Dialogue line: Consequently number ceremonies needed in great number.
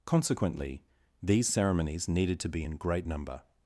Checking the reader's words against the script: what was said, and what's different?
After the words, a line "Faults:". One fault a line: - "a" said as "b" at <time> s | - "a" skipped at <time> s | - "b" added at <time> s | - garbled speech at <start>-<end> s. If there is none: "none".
Consequently these ceremonies needed to be in great number.
Faults:
- "number" said as "these" at 1.2 s
- "to be" added at 2.4 s